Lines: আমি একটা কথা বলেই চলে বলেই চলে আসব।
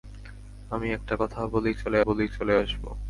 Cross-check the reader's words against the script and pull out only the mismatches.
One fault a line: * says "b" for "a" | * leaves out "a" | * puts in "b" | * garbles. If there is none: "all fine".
all fine